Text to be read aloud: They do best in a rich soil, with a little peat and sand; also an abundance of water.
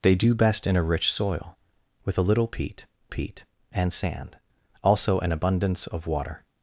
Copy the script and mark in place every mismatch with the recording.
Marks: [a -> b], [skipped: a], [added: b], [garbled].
They do best in a rich soil, with a little peat [added: peat] and sand; also an abundance of water.